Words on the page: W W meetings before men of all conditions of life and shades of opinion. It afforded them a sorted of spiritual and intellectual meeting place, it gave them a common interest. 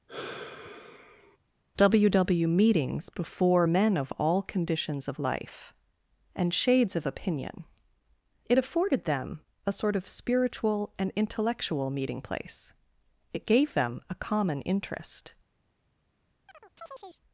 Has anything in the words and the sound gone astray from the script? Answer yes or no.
yes